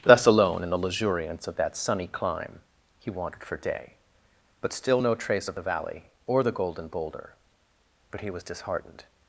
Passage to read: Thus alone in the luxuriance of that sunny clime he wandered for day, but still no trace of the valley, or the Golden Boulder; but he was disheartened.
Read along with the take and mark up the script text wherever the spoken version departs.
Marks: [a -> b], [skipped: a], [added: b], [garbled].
Thus alone in the luxuriance of that sunny clime he wandered for day, but still no trace of the valley, or the Golden Boulder; but he was disheartened.